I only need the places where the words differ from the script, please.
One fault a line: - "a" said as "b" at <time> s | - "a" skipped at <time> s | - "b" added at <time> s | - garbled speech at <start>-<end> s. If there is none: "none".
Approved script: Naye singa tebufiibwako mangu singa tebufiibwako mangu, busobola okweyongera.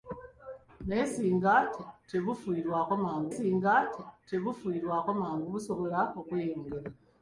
none